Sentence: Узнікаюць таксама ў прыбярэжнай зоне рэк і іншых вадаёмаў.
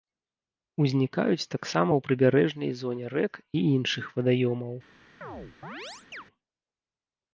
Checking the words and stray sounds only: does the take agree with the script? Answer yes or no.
no